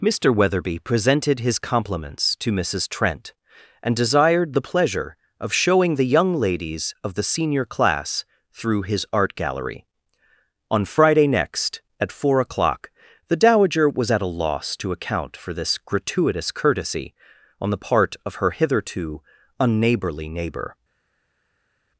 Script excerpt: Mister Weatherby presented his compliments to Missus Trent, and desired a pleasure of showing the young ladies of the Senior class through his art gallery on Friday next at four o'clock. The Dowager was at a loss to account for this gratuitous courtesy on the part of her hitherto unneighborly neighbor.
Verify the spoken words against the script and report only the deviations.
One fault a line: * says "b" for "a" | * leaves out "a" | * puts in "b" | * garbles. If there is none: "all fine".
* says "the" for "a"